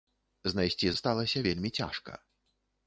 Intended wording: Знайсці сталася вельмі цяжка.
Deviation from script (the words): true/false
false